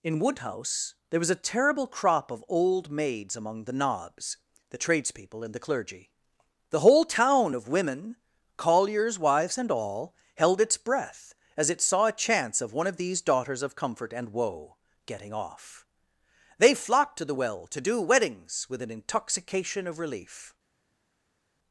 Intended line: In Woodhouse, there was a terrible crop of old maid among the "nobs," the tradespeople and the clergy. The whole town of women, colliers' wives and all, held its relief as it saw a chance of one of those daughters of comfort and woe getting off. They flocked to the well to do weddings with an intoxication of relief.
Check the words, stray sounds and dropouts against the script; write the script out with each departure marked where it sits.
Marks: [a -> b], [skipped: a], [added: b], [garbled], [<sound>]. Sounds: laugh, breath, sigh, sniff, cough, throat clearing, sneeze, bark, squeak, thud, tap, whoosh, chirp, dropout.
In Woodhouse, there was a terrible crop of old [maid -> maids] among the "nobs," the tradespeople and the clergy. The whole town of women, colliers' wives and all, held its [relief -> breath] as it saw a chance of one of [those -> these] daughters of comfort and woe getting off. They flocked to the well to do weddings with an intoxication of relief.